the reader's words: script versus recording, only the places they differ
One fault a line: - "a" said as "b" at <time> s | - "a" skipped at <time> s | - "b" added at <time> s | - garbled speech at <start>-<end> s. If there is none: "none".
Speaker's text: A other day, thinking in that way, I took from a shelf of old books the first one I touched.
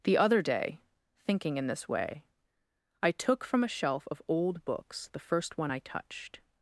- "A" said as "The" at 0.0 s
- "that" said as "this" at 1.7 s